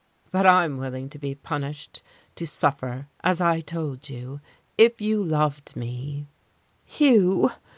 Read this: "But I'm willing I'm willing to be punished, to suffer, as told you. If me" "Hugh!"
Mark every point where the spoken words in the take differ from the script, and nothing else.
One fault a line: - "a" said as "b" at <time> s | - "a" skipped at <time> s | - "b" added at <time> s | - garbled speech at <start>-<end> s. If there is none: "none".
- "I'm willing" skipped at 1.1 s
- "I" added at 3.4 s
- "you loved" added at 5.0 s